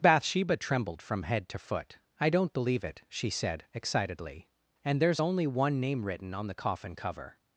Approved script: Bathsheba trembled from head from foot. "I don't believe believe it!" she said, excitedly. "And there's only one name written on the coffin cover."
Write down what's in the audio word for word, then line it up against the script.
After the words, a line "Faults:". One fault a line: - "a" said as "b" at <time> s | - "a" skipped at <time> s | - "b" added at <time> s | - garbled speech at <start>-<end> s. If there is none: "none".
Bathsheba trembled from head to foot. "I don't believe it!" she said, excitedly. "And there's only one name written on the coffin cover."
Faults:
- "from" said as "to" at 1.5 s
- "believe" skipped at 2.8 s